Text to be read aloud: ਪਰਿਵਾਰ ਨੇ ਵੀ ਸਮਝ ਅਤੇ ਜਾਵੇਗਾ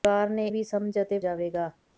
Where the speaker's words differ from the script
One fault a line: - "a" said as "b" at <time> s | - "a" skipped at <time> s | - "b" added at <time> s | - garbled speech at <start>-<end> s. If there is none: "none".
none